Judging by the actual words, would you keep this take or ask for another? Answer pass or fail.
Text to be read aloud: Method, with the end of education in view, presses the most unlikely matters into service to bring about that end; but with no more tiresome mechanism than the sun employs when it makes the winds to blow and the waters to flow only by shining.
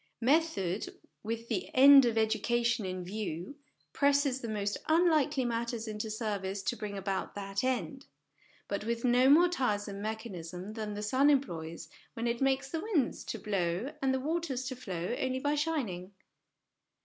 pass